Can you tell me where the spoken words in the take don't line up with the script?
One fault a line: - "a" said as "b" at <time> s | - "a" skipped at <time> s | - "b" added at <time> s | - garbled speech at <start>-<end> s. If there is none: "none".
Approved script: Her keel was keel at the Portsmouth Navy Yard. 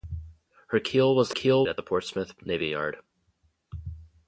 none